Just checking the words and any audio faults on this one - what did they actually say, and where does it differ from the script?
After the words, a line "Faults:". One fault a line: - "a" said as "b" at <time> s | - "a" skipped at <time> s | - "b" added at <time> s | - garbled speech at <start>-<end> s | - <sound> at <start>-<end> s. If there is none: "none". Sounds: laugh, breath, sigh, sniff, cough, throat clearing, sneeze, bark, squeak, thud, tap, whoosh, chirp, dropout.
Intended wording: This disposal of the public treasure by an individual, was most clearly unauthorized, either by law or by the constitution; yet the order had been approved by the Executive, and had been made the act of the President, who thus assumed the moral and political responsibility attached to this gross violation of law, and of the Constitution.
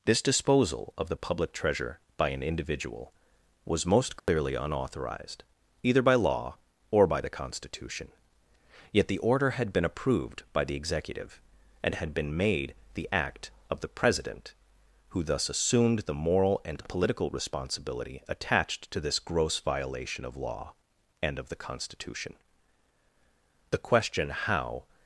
This disposal of the public treasure by an individual, was most clearly unauthorized, either by law or by the constitution; yet the order had been approved by the Executive, and had been made the act of the President, who thus assumed the moral and political responsibility attached to this gross violation of law, and of the Constitution. The question how
Faults:
- dropout at 4.2-4.3 s
- "The question how" added at 23.7 s